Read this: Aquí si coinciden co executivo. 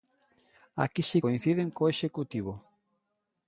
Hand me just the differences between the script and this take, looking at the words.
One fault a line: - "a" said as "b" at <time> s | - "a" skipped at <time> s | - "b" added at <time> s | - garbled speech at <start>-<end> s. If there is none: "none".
none